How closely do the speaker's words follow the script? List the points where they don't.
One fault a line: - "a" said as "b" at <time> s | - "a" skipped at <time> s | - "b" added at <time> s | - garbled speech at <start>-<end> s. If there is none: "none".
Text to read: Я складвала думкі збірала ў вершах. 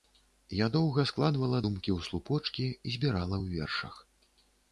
- "доўга" added at 0.8 s
- "ў слупочкі" added at 2.0 s